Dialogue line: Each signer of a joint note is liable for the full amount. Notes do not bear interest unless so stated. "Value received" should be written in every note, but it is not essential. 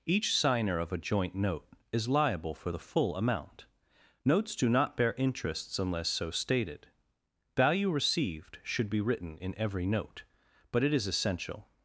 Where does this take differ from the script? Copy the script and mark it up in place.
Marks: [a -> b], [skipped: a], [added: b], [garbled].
Each signer of a joint note is liable for the full amount. Notes do not bear [interest -> interests] unless so stated. "Value received" should be written in every note, but it is [skipped: not] essential.